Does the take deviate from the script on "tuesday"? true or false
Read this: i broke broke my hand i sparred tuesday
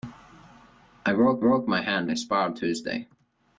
false